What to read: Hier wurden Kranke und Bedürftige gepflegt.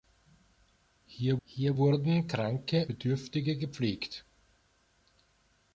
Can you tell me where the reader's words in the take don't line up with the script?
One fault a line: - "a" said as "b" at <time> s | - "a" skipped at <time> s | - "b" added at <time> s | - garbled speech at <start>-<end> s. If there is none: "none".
- "hier" added at 1.4 s
- "und" skipped at 2.8 s